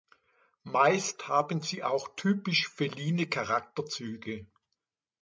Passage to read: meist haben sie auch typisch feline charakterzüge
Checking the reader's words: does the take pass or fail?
pass